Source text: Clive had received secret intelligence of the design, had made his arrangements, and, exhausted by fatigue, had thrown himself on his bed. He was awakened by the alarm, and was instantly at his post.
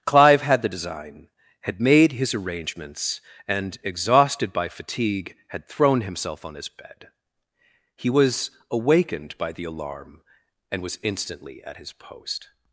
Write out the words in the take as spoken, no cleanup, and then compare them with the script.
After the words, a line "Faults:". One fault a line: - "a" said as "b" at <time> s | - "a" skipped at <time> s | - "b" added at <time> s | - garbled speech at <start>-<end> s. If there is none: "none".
Clive had the design, had made his arrangements, and, exhausted by fatigue, had thrown himself on his bed. He was awakened by the alarm, and was instantly at his post.
Faults:
- "received secret intelligence of" skipped at 0.6 s